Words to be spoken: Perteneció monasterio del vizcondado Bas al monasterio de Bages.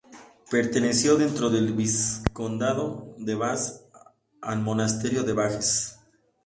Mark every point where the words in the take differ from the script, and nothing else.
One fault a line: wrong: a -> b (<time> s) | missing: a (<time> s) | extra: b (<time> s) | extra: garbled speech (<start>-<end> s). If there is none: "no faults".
wrong: monasterio -> dentro (1.2 s)
extra: de (3.2 s)